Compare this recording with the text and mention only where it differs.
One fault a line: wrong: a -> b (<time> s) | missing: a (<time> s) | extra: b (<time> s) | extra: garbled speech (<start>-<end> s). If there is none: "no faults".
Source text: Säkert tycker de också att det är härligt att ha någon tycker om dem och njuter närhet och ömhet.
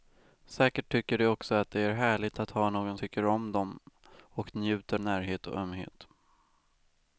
no faults